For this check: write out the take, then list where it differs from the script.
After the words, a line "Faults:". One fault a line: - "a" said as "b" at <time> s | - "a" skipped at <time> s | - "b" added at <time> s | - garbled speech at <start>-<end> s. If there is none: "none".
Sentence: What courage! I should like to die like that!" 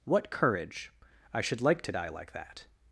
What courage! I should like to die like that!"
Faults:
none